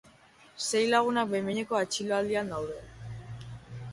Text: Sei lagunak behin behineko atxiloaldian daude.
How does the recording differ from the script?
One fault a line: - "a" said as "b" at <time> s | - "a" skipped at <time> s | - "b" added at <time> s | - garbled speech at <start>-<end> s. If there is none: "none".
none